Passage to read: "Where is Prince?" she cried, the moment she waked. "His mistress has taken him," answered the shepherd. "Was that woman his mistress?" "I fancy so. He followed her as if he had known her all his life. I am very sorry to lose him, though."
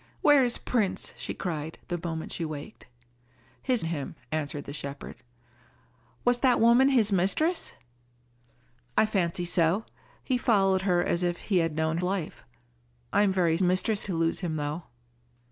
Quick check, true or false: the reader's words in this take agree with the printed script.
false